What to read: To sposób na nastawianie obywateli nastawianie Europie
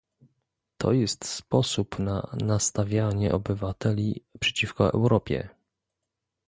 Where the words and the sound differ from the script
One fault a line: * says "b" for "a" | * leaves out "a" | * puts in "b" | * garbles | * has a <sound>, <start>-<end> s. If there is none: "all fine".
* puts in "jest"
* says "przeciwko" for "nastawianie"